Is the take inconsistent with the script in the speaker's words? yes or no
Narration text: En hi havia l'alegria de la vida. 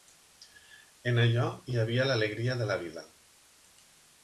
yes